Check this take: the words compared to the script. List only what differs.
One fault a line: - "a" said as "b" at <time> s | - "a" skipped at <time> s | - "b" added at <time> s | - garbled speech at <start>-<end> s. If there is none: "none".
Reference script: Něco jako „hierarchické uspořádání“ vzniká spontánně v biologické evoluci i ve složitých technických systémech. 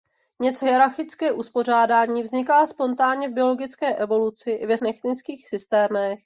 - "jako" skipped at 0.7 s
- "složitých" skipped at 4.8 s